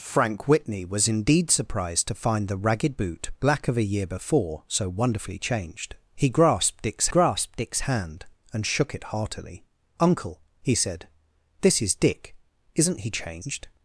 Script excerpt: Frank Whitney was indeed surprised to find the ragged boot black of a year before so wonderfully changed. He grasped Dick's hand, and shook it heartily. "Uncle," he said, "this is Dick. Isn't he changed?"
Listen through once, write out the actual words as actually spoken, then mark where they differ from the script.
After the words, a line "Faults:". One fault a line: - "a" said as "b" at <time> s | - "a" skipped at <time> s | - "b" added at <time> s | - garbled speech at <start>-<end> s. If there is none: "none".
Frank Whitney was indeed surprised to find the ragged boot black of a year before so wonderfully changed. He grasped Dick's grasped Dick's hand, and shook it heartily. "Uncle," he said, "this is Dick. Isn't he changed?"
Faults:
- "grasped Dick's" added at 7.1 s